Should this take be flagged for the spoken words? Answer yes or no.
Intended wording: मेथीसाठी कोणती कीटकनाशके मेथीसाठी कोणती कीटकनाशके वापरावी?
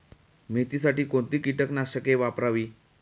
yes